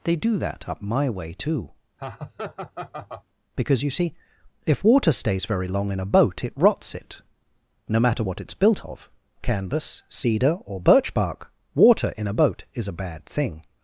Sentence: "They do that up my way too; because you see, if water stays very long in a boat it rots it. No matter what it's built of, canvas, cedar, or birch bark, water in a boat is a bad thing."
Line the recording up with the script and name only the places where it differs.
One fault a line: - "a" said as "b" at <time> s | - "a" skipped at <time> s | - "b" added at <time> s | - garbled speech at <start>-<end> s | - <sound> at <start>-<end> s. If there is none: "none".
- laugh at 2.0-3.2 s